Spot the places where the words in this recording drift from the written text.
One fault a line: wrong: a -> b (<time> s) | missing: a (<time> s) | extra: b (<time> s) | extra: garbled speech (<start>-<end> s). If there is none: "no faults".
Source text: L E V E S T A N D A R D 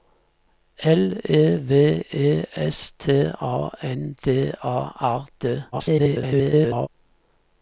extra: garbled speech (5.7-6.9 s)